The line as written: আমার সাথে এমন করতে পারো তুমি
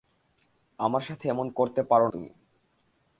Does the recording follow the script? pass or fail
pass